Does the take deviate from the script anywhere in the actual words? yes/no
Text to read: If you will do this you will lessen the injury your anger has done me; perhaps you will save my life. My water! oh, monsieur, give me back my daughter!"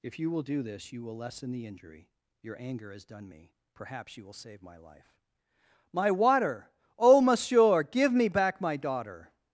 no